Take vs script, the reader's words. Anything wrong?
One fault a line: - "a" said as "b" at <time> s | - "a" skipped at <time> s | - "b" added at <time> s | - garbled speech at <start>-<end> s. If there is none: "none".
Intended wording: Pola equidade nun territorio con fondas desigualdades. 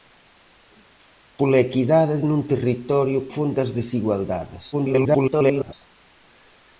- "con" skipped at 3.2 s
- garbled speech at 4.7-5.7 s